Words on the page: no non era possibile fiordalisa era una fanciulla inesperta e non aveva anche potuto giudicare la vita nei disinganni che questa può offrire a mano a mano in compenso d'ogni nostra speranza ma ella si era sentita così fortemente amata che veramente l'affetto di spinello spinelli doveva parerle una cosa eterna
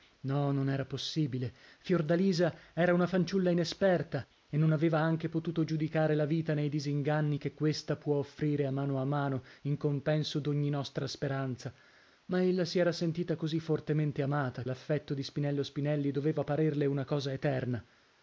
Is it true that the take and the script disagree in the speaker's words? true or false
true